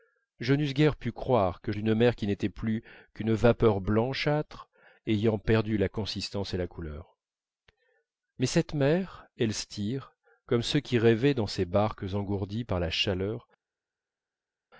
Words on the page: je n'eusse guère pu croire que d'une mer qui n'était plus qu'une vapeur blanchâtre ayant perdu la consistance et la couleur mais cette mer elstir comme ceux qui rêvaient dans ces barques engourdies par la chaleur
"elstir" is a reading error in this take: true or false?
false